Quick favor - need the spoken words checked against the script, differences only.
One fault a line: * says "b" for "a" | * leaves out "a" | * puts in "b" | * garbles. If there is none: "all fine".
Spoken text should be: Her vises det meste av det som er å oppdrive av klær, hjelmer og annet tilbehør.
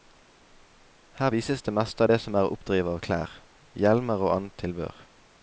all fine